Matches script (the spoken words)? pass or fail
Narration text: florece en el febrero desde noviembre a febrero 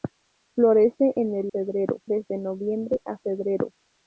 pass